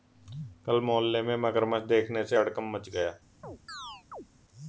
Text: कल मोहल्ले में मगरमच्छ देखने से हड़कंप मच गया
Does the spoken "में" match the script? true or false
true